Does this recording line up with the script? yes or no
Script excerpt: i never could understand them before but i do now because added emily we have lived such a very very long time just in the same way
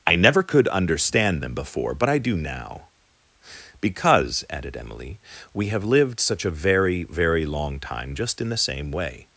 yes